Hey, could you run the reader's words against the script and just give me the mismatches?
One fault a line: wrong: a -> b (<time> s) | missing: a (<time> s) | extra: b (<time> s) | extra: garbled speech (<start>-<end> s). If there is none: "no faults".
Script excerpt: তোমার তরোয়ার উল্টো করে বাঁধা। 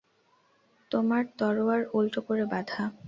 no faults